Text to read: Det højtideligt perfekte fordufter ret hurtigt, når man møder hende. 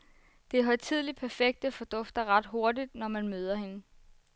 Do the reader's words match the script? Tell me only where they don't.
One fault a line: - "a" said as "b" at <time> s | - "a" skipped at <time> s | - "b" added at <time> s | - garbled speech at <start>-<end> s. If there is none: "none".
none